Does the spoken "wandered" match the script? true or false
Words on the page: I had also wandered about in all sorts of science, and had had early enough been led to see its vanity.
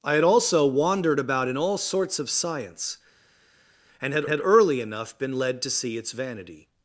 true